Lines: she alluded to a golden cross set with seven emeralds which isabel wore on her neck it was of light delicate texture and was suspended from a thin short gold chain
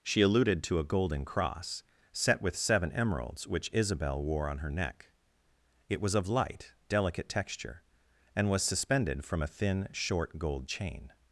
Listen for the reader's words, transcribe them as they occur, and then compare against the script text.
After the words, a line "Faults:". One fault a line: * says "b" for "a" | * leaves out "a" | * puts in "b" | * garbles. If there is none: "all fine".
she alluded to a golden cross set with seven emeralds which isabel wore on her neck it was of light delicate texture and was suspended from a thin short gold chain
Faults:
all fine